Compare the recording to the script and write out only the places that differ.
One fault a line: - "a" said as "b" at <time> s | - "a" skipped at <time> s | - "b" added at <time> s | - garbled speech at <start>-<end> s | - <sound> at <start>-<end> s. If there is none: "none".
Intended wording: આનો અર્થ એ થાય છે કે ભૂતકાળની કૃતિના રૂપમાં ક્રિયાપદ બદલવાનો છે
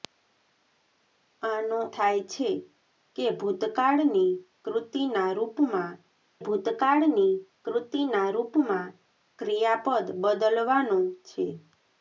- "અર્થ એ" skipped at 1.8 s
- "ભૂતકાળની કૃતિના રૂપમાં" added at 6.4 s